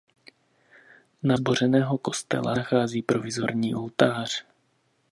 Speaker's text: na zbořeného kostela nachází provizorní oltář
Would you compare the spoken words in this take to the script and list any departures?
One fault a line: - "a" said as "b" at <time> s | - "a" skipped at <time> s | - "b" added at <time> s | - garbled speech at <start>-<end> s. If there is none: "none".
none